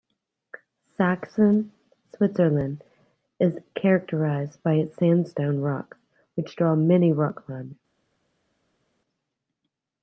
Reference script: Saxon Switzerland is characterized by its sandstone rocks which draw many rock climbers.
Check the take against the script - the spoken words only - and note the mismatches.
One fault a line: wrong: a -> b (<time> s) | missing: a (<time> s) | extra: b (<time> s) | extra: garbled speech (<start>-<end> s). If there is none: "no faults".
no faults